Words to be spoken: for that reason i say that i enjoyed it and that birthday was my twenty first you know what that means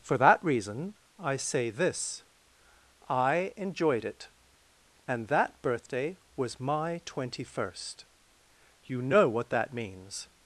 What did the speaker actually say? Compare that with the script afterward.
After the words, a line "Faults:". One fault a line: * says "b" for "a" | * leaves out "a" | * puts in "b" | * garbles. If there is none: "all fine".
for that reason i say this i enjoyed it and that birthday was my twenty first you know what that means
Faults:
* says "this" for "that"